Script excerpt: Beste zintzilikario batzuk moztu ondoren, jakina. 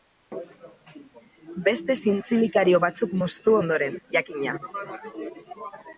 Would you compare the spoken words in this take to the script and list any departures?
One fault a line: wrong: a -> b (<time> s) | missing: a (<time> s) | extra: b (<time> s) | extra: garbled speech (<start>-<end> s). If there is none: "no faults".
no faults